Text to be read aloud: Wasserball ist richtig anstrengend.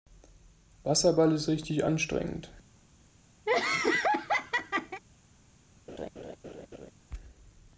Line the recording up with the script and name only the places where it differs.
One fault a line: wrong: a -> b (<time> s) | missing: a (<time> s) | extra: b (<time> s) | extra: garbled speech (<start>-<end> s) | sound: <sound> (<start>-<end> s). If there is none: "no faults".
sound: laugh (3.5-5.0 s)
sound: laugh (5.9-6.9 s)